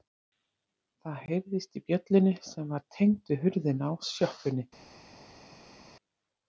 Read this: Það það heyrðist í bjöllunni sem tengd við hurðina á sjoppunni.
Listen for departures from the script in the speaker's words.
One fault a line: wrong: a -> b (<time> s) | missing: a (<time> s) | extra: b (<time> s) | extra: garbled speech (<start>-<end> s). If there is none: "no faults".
missing: það (1.2 s)
extra: var (2.7 s)